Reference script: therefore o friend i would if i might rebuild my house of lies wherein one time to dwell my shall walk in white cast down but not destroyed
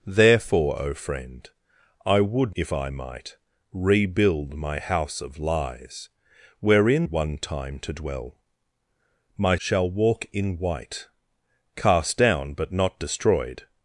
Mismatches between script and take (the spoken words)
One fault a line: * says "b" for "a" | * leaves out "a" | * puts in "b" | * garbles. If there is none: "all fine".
all fine